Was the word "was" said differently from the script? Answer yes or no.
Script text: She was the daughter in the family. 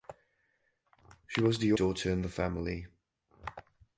no